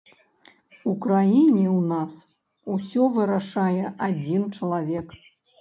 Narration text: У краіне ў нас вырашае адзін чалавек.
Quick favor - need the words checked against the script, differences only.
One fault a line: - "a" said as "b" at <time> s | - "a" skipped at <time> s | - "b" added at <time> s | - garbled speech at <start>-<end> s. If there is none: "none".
- "усё" added at 2.8 s